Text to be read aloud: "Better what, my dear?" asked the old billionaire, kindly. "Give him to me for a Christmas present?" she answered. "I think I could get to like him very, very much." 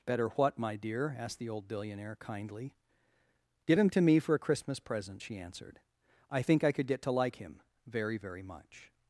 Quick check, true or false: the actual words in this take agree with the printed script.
true